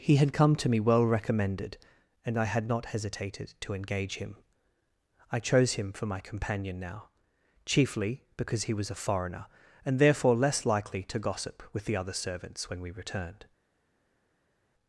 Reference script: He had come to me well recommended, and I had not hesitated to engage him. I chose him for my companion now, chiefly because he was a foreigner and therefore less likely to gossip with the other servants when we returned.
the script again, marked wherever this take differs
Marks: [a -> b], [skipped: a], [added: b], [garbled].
He had come to me well recommended, and I had not hesitated to engage him. I chose him for my companion now, chiefly because he was a foreigner and therefore less likely to gossip with the other servants when we returned.